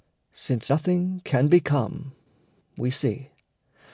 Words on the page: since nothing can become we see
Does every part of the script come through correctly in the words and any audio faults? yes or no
yes